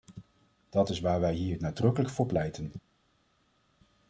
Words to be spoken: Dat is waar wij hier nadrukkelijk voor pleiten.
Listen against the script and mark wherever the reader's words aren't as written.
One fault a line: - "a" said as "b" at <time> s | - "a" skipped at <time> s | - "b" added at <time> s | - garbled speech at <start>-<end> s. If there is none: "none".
none